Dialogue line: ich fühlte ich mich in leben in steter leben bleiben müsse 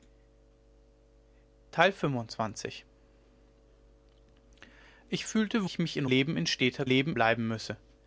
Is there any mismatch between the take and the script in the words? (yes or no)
no